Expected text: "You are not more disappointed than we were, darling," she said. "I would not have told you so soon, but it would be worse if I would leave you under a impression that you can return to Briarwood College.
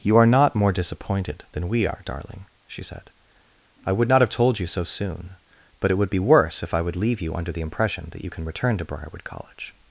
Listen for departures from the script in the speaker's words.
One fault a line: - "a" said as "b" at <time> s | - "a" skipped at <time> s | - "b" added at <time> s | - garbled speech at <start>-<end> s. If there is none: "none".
- "were" said as "are" at 1.9 s
- "a" said as "the" at 7.5 s